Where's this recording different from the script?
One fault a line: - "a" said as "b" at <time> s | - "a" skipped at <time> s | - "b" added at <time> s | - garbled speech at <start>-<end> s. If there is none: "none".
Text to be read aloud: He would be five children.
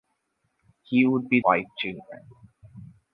none